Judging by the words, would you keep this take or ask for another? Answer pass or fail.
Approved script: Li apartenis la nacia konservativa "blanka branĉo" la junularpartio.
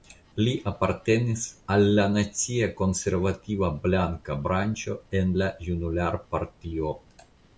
fail